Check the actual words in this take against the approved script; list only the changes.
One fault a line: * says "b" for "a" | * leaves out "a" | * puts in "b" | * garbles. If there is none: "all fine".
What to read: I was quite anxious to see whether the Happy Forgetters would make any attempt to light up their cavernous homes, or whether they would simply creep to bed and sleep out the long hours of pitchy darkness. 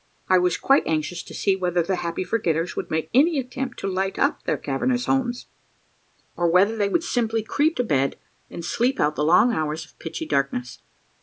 all fine